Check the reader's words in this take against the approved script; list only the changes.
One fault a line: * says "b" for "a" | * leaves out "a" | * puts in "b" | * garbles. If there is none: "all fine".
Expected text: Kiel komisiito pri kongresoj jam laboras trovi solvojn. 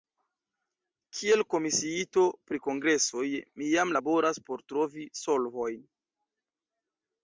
* puts in "mi"
* puts in "por"